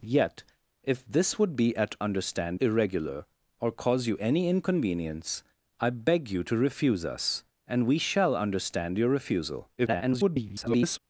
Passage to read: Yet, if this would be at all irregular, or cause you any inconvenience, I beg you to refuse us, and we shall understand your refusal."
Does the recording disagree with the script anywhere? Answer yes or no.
yes